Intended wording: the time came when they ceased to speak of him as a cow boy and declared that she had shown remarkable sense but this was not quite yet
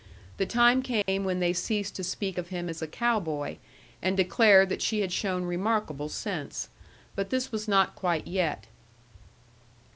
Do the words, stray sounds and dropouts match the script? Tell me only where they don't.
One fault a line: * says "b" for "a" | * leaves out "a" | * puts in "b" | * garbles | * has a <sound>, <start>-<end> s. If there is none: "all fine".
* has a dropout, 1.0-1.1 s